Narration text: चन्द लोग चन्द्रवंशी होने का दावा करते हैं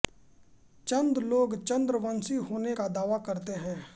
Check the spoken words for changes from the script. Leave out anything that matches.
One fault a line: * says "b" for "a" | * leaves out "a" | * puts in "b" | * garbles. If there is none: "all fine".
all fine